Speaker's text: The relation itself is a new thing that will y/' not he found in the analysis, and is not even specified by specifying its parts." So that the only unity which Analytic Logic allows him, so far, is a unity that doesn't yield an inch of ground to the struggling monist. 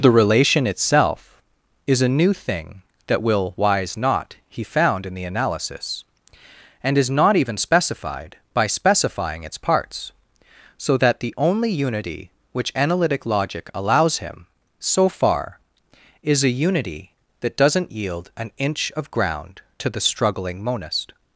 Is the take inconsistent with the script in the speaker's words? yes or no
yes